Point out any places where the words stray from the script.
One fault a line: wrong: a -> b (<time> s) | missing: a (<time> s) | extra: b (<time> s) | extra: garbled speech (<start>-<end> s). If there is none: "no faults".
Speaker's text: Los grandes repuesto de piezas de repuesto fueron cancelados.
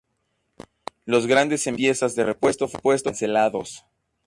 wrong: repuesto -> envíos (1.7 s)